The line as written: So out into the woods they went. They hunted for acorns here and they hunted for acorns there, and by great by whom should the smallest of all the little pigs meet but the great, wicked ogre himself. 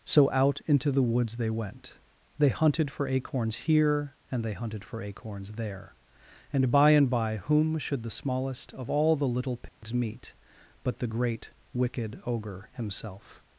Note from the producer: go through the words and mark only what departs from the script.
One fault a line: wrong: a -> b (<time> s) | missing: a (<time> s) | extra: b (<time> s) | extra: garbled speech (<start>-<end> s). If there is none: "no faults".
wrong: great -> and (6.9 s)